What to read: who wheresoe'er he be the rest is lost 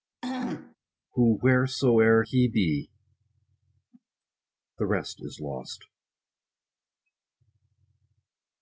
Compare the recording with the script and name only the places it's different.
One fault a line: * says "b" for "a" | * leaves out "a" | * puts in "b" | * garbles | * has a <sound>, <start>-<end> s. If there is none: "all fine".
* has a throat clearing, 0.2-0.8 s